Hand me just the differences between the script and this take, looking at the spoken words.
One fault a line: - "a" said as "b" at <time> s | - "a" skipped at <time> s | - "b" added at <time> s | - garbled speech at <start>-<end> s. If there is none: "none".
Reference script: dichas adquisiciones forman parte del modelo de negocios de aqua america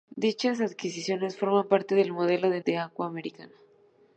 - "negocios" skipped at 2.6 s